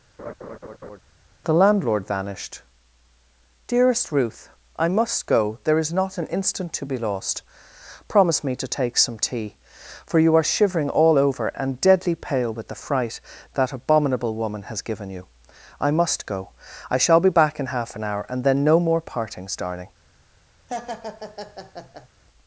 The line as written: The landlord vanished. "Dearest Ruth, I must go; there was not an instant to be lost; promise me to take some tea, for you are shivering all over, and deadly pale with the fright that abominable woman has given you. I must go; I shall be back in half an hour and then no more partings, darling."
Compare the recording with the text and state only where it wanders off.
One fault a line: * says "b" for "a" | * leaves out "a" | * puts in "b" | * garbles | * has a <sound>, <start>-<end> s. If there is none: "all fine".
* has a laugh, 0.2-1.0 s
* says "is" for "was"
* has a laugh, 20.7-22.1 s